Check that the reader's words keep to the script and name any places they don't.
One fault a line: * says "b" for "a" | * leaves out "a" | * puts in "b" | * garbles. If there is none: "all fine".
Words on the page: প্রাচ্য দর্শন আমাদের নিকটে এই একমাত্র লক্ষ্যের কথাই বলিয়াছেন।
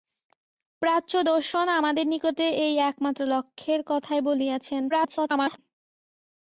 * garbles